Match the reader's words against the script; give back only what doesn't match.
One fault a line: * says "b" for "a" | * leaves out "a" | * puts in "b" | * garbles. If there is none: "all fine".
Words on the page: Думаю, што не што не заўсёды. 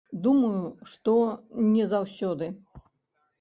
* leaves out "што не"